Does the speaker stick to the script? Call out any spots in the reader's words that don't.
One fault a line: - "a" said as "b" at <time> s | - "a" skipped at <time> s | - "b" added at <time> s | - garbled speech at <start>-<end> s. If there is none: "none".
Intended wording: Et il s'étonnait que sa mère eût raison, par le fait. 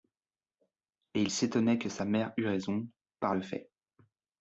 none